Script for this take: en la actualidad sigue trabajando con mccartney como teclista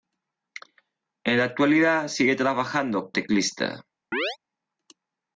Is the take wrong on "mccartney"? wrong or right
wrong